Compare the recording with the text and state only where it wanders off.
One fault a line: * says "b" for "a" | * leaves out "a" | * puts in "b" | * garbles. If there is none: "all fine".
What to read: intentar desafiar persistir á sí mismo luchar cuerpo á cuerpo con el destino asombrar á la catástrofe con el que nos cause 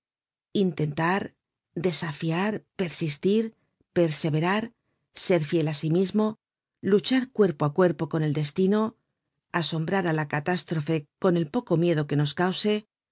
* puts in "perseverar ser fiel"
* puts in "poco miedo"